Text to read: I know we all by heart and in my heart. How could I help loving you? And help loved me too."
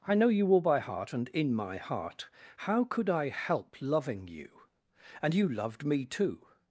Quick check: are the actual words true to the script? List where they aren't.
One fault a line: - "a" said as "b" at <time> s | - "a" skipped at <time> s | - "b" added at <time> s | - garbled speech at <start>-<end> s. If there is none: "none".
- "we" said as "you" at 0.3 s
- "help" said as "you" at 5.3 s